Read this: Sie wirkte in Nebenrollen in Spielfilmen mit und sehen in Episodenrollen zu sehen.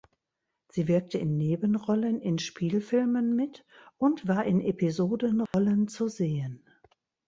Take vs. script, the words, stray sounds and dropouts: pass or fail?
fail